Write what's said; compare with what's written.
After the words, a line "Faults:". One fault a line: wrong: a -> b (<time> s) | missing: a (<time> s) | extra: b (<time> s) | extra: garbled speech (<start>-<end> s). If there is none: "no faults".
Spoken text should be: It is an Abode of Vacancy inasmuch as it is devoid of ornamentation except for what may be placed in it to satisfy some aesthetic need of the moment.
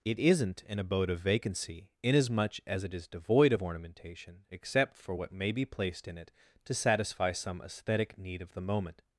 It isn't an Abode of Vacancy inasmuch as it is devoid of ornamentation except for what may be placed in it to satisfy some aesthetic need of the moment.
Faults:
wrong: is -> isn't (0.2 s)